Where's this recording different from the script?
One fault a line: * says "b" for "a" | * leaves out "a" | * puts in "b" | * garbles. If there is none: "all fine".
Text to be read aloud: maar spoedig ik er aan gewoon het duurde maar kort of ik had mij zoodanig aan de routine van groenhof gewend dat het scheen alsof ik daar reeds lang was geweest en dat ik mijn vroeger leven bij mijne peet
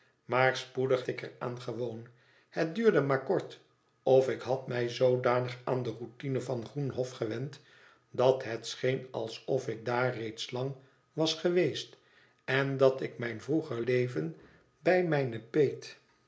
all fine